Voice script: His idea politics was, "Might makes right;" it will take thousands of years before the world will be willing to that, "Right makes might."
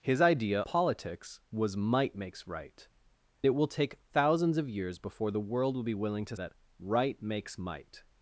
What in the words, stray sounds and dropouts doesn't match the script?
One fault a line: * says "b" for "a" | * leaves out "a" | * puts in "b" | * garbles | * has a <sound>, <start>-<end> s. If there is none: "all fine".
all fine